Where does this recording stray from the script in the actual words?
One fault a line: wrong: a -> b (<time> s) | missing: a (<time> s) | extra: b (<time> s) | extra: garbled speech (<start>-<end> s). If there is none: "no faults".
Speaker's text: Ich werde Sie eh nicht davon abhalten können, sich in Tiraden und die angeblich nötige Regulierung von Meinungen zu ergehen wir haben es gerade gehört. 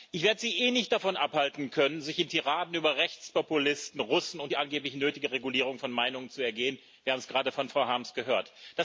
extra: über Rechtspopulisten Russen (2.7 s)
extra: von Frau Harms (7.5 s)